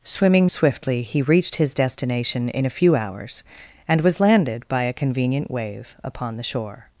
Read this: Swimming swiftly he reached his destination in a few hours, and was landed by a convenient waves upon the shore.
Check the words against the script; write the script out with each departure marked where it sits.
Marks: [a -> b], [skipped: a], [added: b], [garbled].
Swimming swiftly he reached his destination in a few hours, and was landed by a convenient [waves -> wave] upon the shore.